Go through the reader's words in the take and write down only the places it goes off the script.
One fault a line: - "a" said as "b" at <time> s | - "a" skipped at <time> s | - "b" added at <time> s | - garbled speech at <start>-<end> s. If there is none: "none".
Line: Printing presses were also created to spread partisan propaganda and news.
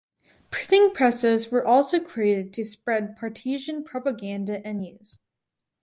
none